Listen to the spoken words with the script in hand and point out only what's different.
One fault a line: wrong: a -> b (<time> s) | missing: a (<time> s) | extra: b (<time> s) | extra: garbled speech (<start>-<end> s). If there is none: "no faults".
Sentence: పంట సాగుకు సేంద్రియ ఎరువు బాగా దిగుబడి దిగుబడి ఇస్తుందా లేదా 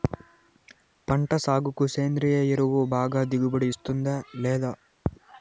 missing: దిగుబడి (3.7 s)